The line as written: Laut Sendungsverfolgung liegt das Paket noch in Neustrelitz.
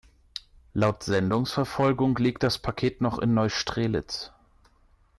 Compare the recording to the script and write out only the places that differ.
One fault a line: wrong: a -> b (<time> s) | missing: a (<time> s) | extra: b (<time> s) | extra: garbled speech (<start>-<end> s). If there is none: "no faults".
no faults